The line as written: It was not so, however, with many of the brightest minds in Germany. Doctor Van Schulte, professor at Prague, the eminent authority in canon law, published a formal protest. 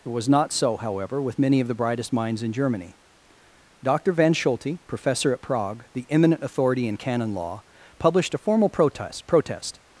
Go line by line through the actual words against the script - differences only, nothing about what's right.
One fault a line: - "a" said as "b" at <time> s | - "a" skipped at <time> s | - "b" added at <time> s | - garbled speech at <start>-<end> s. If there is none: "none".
- "protest" added at 9.3 s